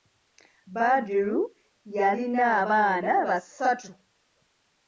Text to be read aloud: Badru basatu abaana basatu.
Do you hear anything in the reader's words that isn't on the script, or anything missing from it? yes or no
yes